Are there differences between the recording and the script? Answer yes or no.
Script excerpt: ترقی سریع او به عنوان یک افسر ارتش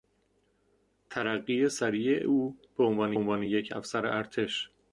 yes